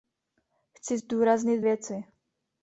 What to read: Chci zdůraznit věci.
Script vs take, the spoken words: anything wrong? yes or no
no